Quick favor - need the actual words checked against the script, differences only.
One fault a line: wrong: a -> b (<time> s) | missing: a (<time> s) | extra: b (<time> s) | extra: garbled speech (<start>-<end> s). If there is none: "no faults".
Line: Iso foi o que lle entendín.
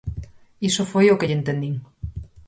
no faults